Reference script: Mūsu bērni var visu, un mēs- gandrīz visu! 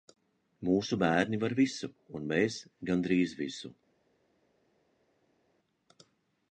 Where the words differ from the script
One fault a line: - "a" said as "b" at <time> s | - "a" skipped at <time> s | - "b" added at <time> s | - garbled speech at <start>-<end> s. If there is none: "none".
none